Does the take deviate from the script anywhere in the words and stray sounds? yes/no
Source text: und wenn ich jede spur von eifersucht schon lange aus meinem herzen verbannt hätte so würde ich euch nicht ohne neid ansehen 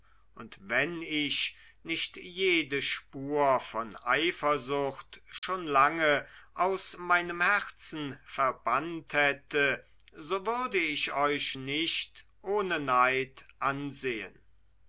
yes